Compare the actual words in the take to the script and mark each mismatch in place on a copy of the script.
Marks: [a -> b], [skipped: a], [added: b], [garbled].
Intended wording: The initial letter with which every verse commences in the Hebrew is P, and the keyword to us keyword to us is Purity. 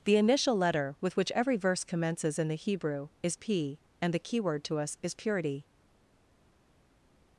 The initial letter with which every verse commences in the Hebrew is P, and the keyword to us [skipped: keyword to us] is Purity.